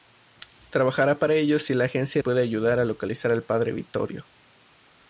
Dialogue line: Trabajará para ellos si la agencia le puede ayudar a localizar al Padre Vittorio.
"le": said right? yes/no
no